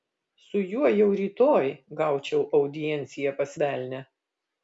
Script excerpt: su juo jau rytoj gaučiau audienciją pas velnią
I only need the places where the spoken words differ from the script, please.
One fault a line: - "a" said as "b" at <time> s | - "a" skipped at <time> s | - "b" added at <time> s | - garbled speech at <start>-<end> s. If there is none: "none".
none